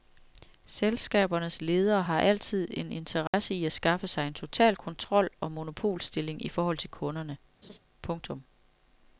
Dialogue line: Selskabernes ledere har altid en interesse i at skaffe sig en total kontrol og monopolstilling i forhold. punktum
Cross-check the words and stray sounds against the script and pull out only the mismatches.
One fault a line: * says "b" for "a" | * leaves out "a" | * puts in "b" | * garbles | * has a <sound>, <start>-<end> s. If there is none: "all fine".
* has a dropout, 3.3-3.3 s
* puts in "til kunderne"
* has a laugh, 7.6-7.8 s